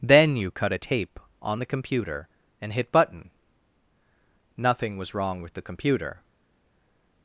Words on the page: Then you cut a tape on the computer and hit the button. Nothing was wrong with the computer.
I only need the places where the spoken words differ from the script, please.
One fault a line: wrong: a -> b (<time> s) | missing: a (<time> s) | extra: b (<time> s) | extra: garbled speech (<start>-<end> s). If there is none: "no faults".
missing: the (2.9 s)